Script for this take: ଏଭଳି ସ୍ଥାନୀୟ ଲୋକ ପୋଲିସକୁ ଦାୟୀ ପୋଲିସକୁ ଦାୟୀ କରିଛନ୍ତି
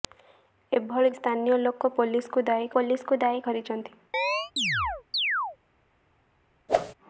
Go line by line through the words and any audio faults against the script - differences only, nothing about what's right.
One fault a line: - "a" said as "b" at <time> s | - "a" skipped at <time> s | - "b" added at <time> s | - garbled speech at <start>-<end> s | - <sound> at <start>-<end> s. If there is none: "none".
- chirp at 4.1-5.6 s
- whoosh at 6.7-6.9 s